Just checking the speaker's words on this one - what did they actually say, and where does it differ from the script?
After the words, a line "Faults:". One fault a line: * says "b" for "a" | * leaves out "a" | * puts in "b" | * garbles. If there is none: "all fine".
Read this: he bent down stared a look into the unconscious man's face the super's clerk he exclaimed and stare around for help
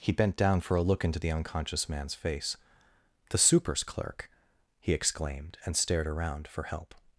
he bent down for a look into the unconscious man's face the super's clerk he exclaimed and stared around for help
Faults:
* says "for" for "stared"
* says "stared" for "stare"